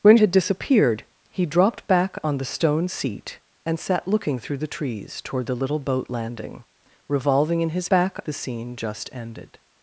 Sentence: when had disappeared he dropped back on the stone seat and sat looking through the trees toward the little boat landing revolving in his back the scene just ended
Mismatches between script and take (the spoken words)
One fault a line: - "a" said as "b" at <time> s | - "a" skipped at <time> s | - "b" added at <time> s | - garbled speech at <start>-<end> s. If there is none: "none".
none